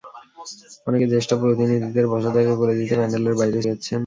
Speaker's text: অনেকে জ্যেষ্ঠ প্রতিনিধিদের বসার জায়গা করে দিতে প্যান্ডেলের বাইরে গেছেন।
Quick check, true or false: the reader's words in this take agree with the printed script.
true